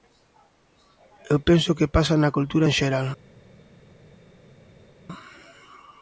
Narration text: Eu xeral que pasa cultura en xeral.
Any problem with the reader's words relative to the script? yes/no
yes